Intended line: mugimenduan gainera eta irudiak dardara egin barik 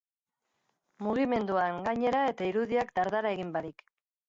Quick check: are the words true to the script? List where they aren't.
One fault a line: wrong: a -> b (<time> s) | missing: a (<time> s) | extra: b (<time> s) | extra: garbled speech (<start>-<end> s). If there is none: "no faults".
no faults